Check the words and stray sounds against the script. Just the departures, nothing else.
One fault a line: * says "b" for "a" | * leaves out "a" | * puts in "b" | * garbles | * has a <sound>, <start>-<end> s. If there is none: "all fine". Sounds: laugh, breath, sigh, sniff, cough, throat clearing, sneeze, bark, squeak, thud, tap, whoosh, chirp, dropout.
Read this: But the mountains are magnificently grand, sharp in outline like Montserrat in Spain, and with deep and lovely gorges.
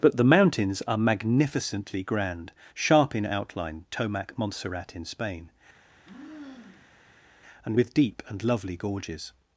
* says "tomac" for "like"
* has a sigh, 5.8-7.3 s